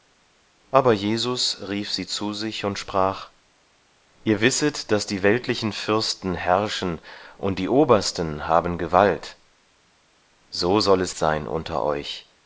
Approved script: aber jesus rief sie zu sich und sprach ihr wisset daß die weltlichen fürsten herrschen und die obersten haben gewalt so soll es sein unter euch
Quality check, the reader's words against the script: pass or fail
pass